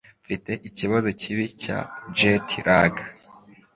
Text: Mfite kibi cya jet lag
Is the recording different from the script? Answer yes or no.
yes